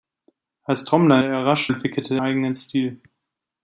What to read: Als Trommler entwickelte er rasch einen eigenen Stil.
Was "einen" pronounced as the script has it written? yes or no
no